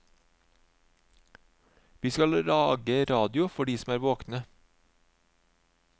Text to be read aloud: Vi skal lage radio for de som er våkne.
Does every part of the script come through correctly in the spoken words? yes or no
yes